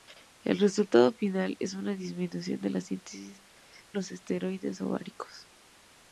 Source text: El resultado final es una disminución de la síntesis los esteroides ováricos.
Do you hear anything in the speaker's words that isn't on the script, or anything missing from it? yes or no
no